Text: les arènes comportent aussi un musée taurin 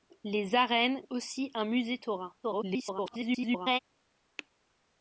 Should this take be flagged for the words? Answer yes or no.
yes